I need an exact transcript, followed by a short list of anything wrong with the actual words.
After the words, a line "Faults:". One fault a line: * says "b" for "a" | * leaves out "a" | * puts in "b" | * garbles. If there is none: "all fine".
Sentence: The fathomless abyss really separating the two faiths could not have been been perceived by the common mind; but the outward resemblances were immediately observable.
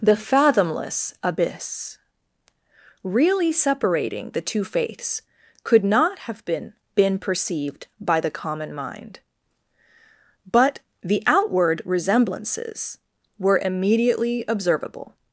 The fathomless abyss really separating the two faiths could not have been been perceived by the common mind; but the outward resemblances were immediately observable.
Faults:
all fine